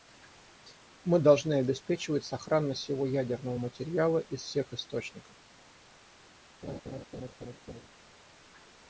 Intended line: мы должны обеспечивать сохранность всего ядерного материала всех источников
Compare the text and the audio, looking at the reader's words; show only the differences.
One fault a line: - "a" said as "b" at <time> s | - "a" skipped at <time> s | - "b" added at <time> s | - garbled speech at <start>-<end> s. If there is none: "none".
- "из" added at 4.2 s